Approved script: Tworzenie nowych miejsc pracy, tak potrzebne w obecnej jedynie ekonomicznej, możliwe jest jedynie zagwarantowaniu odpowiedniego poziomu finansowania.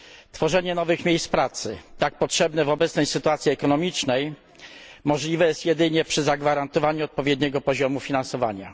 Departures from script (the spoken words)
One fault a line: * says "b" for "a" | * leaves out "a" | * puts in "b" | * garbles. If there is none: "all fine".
* says "sytuacji" for "jedynie"
* puts in "przy"